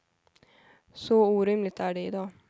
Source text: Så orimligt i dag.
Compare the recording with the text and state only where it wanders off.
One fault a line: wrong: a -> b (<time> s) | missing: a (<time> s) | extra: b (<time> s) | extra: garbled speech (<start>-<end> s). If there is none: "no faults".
extra: är det (1.8 s)